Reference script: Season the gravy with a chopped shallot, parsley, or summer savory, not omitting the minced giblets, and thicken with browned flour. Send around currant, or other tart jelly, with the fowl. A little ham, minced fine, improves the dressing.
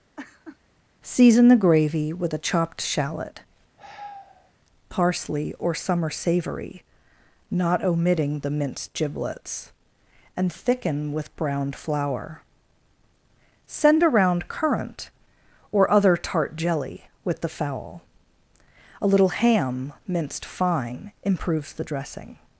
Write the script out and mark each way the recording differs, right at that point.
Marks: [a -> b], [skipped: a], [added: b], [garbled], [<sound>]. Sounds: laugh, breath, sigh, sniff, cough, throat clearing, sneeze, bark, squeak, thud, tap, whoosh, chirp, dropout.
[laugh] Season the gravy with a chopped shallot, [sigh] parsley, or summer savory, not omitting the minced giblets, and thicken with browned flour. Send around currant, or other tart jelly, with the fowl. A little ham, minced fine, improves the dressing.